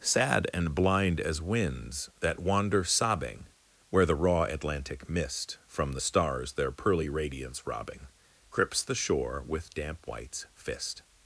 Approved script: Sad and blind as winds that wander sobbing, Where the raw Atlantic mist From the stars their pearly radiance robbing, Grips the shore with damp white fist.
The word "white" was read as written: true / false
false